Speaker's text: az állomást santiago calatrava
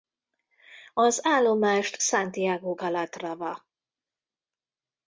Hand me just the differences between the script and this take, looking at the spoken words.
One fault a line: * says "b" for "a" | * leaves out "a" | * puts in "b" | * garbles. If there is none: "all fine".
all fine